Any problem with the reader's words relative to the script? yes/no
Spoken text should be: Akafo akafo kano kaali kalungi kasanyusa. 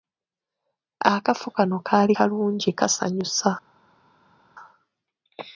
yes